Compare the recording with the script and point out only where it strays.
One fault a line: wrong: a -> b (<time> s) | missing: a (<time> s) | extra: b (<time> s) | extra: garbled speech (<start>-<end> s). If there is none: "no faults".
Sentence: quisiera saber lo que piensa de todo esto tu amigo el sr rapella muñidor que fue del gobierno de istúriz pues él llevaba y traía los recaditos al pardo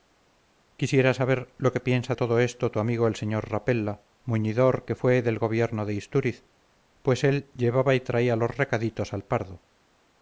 missing: de (2.1 s)